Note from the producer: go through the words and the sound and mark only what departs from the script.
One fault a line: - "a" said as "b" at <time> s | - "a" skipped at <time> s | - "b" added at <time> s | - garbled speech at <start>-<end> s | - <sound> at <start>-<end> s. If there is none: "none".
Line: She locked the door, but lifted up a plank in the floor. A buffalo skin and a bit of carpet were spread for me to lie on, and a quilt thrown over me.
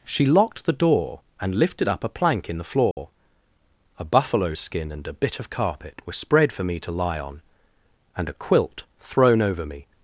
- "but" said as "and" at 1.4 s
- dropout at 2.9-3.0 s